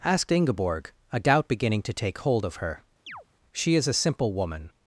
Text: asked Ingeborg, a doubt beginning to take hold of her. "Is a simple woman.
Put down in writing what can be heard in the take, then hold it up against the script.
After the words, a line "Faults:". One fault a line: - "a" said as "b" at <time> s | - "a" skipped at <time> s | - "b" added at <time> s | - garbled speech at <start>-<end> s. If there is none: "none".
asked Ingeborg, a doubt beginning to take hold of her. "She is a simple woman.
Faults:
- "She" added at 3.5 s